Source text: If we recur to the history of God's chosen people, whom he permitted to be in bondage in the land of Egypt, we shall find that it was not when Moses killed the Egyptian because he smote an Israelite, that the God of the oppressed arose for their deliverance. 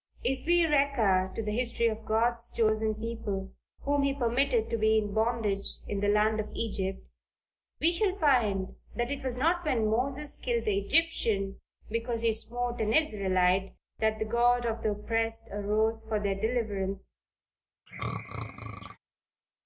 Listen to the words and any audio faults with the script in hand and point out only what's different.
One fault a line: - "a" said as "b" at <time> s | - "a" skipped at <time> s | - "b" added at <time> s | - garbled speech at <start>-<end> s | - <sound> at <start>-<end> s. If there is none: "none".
- throat clearing at 17.9-19.0 s